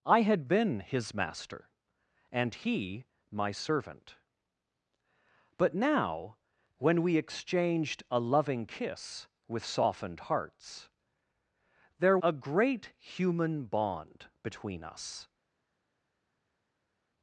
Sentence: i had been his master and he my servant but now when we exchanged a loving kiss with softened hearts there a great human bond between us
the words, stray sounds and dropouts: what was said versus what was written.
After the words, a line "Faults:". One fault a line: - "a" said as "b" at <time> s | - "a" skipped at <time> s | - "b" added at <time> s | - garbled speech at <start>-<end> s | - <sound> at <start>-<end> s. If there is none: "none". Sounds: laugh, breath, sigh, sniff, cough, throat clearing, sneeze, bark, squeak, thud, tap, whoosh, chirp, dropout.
i had been his master and he my servant but now when we exchanged a loving kiss with softened hearts there a great human bond between us
Faults:
none